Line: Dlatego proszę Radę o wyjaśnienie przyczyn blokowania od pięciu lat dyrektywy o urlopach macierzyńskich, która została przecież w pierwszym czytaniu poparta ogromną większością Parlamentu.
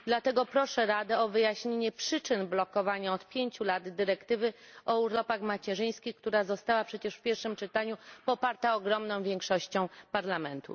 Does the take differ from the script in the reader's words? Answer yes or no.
no